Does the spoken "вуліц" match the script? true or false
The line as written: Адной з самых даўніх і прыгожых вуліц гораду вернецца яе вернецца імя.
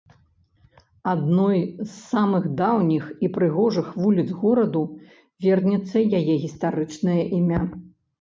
true